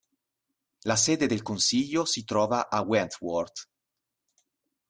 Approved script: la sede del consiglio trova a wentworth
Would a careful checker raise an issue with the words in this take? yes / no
yes